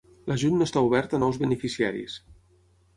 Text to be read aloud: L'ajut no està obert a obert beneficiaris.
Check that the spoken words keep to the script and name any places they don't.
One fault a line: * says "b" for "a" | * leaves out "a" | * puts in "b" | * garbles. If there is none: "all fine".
* says "nous" for "obert"